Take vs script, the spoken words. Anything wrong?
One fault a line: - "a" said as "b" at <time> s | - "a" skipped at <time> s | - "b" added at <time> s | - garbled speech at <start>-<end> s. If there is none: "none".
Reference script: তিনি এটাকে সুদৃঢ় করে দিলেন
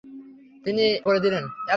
- "এটাকে সুদৃঢ়" skipped at 0.8 s